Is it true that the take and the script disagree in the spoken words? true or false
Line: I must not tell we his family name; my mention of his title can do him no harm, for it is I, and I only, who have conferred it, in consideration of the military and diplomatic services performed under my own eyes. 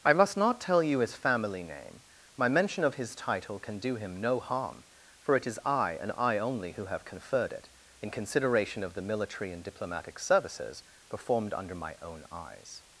true